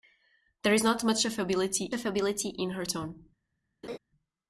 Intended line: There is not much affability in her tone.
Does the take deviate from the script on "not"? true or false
false